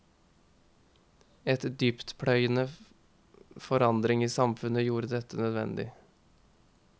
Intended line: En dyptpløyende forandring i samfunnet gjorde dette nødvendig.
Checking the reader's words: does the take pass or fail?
pass